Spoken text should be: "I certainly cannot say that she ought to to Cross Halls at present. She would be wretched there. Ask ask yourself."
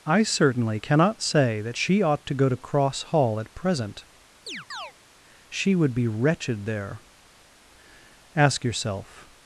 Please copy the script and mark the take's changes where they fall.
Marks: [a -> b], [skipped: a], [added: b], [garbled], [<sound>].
"I certainly cannot say that she ought to [added: go] to Cross [Halls -> Hall] at present. [chirp] She would be wretched there. Ask [skipped: ask] yourself."